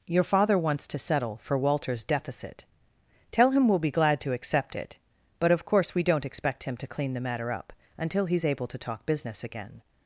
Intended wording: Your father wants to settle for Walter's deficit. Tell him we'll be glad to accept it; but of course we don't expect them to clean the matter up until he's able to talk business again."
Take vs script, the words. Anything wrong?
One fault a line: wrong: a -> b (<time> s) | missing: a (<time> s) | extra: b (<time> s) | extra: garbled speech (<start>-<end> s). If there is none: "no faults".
wrong: them -> him (6.6 s)